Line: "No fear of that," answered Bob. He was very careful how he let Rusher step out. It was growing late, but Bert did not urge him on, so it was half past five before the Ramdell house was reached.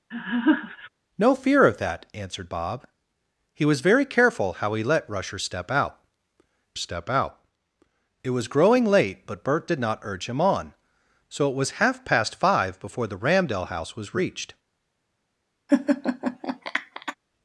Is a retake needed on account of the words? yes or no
yes